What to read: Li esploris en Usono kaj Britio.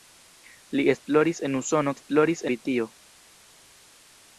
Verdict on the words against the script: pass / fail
fail